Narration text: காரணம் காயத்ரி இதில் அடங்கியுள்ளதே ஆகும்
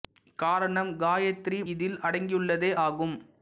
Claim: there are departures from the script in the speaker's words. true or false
false